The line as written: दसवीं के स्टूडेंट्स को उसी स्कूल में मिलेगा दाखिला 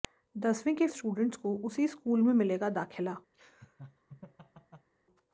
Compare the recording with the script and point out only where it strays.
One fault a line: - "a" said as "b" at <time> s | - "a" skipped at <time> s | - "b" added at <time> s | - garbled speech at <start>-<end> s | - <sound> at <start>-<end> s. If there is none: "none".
- laugh at 3.3-4.9 s